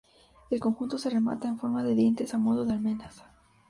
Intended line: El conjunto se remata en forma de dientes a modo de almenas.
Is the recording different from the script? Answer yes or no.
no